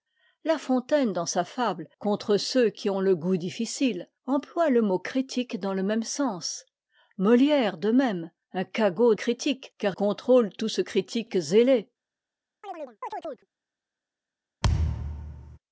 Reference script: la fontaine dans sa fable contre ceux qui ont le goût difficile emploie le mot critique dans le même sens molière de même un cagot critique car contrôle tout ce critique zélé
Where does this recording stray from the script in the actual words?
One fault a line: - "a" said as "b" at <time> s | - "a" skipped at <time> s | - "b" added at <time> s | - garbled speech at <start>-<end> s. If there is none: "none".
none